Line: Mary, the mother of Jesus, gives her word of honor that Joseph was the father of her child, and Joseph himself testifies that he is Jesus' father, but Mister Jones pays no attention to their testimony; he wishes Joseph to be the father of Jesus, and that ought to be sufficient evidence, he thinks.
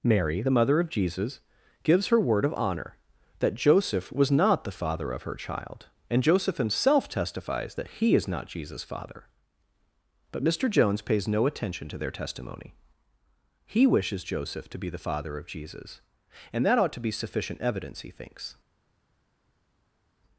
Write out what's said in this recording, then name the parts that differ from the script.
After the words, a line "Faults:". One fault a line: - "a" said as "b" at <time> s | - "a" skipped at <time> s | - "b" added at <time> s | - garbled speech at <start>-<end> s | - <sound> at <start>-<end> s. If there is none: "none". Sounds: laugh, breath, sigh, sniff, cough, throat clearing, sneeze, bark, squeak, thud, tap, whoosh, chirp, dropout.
Mary, the mother of Jesus, gives her word of honor that Joseph was not the father of her child, and Joseph himself testifies that he is not Jesus' father, but Mister Jones pays no attention to their testimony; he wishes Joseph to be the father of Jesus, and that ought to be sufficient evidence, he thinks.
Faults:
- "not" added at 4.3 s
- "not" added at 8.3 s